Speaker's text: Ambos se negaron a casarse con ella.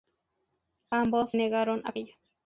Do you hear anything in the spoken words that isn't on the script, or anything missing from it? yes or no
yes